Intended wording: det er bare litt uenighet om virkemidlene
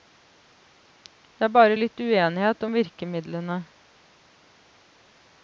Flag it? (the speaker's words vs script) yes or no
no